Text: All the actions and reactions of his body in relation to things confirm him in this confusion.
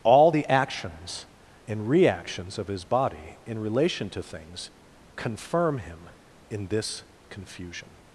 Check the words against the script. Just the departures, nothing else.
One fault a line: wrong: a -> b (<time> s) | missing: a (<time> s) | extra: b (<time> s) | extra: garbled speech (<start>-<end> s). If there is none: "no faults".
no faults